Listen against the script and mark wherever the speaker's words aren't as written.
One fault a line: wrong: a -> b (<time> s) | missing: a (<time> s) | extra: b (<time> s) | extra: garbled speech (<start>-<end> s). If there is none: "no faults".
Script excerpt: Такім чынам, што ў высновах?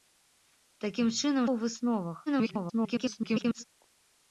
missing: што (1.4 s)
extra: garbled speech (2.3-3.6 s)